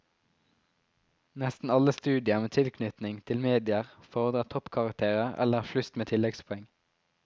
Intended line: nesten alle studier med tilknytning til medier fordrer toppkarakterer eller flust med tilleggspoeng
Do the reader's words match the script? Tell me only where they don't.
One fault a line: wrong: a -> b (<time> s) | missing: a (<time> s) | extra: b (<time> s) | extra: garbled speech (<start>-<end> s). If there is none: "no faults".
no faults